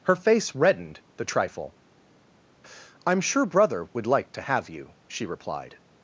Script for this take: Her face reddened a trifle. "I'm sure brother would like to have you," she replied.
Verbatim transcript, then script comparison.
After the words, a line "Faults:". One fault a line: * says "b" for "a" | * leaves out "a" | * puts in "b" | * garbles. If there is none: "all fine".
Her face reddened the trifle. "I'm sure brother would like to have you," she replied.
Faults:
* says "the" for "a"